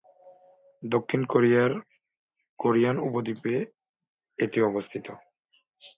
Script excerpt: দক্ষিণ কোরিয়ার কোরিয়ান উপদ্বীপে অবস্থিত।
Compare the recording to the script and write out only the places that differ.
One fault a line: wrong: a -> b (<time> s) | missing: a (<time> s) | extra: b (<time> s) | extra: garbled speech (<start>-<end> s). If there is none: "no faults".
extra: এটি (4.4 s)